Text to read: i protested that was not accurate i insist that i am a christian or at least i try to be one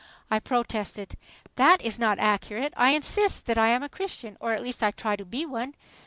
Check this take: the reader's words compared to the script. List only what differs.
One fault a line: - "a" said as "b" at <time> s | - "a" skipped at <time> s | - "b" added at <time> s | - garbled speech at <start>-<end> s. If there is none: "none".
- "was" said as "is" at 1.8 s